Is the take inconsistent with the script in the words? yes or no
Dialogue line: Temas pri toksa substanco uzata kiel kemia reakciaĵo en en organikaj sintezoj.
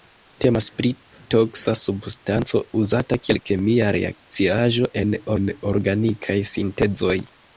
no